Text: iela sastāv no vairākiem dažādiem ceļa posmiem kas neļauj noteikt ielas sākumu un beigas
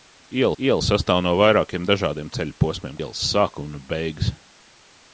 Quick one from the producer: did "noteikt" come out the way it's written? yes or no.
no